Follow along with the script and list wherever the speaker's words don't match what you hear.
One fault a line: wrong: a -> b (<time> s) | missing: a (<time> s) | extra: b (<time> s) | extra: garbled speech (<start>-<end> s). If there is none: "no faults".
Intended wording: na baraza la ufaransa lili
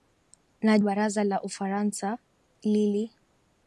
no faults